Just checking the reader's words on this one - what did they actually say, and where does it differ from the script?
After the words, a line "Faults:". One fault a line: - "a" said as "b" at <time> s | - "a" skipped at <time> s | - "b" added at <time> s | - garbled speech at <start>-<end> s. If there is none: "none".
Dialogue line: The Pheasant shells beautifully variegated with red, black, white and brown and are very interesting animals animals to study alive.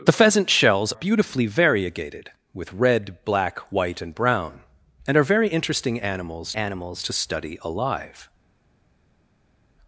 The Pheasant shells beautifully variegated with red, black, white and brown and are very interesting animals animals to study alive.
Faults:
none